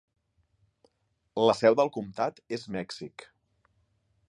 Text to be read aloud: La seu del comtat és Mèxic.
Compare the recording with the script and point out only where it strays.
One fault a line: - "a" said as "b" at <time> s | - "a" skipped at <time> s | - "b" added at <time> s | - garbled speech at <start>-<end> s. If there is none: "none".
none